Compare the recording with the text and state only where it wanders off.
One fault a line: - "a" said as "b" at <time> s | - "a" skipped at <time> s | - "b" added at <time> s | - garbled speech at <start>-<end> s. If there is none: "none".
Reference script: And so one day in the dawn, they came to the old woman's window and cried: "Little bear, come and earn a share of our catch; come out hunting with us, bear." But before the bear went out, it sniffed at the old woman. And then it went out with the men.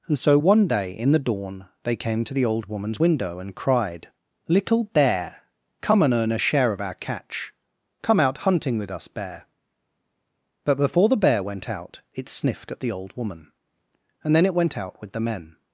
none